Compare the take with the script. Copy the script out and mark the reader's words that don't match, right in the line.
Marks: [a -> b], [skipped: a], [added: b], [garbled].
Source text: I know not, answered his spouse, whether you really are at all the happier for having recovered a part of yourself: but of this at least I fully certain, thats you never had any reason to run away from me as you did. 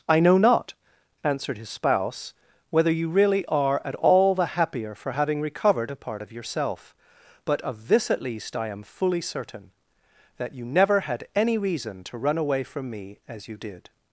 I know not, answered his spouse, whether you really are at all the happier for having recovered a part of yourself: but of this at least I [added: am] fully certain, [thats -> that] you never had any reason to run away from me as you did.